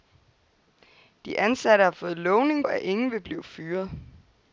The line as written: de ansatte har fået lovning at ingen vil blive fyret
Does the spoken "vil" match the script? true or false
true